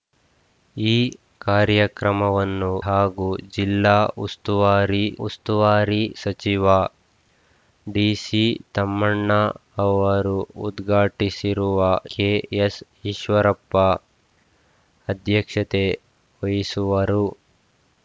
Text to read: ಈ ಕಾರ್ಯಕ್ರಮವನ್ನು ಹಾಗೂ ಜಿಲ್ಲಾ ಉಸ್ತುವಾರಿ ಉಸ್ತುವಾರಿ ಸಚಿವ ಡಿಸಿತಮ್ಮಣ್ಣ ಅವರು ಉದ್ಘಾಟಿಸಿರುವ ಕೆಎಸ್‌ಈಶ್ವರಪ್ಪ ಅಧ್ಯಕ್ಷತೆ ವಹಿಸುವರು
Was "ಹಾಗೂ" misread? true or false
false